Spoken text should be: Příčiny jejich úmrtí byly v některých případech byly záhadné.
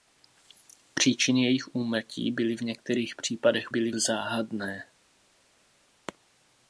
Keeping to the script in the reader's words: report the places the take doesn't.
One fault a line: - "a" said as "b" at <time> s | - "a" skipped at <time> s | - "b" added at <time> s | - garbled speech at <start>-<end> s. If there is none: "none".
none